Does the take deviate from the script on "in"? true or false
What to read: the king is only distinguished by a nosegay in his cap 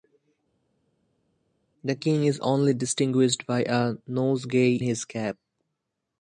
true